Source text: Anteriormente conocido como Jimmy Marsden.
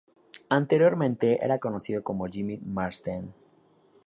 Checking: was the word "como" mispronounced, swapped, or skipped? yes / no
no